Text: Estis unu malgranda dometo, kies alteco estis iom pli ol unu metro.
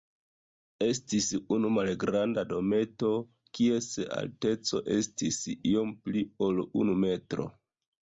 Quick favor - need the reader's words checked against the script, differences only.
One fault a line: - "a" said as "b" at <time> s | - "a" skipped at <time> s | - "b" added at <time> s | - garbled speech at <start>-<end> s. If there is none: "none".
none